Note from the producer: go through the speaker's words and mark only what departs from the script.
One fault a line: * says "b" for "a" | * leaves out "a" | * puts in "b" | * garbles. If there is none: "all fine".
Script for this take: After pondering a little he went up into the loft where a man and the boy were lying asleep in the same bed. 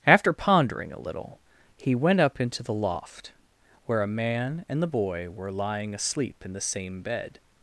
all fine